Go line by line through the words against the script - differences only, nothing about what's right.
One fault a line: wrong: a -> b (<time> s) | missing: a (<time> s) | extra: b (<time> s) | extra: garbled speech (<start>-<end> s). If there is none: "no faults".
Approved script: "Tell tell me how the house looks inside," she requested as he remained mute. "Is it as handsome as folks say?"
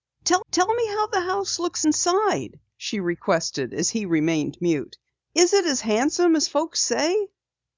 no faults